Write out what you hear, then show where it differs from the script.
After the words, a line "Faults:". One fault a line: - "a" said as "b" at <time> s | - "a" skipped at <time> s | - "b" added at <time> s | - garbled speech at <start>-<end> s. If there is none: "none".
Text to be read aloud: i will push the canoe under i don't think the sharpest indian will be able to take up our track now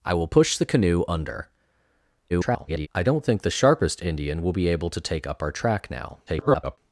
i will push the canoe under [garbled] i don't think the sharpest indian will be able to take up our track now [garbled]
Faults:
- garbled speech at 2.3-2.9 s
- garbled speech at 6.3-6.8 s